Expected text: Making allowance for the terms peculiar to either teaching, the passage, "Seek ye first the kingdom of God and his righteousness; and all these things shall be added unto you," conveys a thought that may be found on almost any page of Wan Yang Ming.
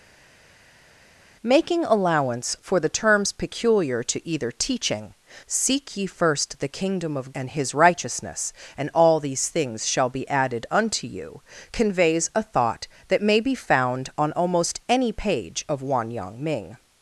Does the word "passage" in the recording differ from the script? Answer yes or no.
yes